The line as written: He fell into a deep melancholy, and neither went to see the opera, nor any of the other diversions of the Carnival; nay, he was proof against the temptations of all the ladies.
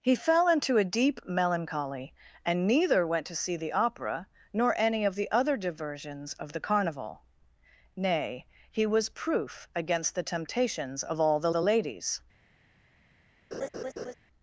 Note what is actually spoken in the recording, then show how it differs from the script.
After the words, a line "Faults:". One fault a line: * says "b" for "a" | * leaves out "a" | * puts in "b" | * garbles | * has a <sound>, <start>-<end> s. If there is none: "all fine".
He fell into a deep melancholy, and neither went to see the opera, nor any of the other diversions of the Carnival; nay, he was proof against the temptations of all the the ladies.
Faults:
* puts in "the"
* has a laugh, 13.5-14.1 s